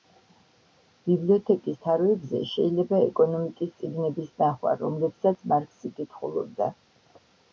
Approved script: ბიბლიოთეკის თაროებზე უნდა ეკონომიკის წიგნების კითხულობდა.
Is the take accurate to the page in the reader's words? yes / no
no